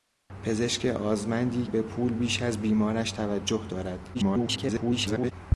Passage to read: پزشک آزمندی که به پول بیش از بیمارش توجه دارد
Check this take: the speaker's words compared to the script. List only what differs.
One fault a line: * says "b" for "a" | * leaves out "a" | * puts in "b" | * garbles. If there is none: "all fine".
* leaves out "که"
* garbles